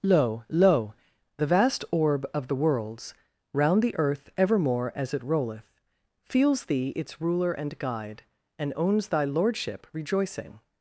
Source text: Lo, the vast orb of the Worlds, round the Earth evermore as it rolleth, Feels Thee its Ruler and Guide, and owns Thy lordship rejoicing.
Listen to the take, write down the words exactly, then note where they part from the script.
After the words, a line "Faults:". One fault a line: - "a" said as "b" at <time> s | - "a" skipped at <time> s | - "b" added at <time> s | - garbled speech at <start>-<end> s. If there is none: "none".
Lo lo, the vast orb of the Worlds, round the Earth evermore as it rolleth, Feels Thee its Ruler and Guide, and owns Thy lordship rejoicing.
Faults:
- "lo" added at 0.5 s